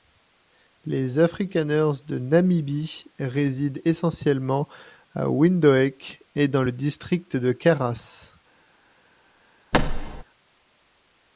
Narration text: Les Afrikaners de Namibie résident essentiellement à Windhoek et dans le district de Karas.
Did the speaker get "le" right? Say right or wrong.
right